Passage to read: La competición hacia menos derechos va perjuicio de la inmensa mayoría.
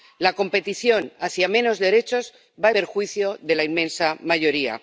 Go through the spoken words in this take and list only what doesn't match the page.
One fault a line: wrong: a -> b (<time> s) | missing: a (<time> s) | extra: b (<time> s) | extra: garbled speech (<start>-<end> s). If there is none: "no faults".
no faults